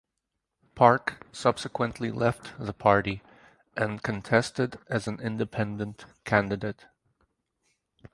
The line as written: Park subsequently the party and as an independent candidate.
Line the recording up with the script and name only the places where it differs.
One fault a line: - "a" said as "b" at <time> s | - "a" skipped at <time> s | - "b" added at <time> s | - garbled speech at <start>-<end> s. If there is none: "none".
- "left" added at 2.1 s
- "contested" added at 4.0 s